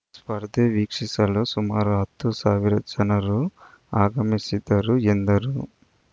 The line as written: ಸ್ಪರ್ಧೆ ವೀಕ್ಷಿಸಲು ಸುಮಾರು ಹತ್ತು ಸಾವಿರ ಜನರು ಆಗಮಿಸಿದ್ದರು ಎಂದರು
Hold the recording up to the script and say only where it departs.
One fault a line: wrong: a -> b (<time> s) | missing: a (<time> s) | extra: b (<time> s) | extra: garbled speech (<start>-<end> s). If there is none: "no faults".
no faults